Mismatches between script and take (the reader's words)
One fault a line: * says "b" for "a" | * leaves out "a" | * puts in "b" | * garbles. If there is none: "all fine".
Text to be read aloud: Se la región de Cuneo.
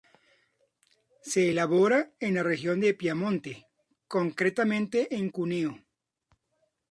* puts in "elabora en"
* puts in "Piamonte concretamente en"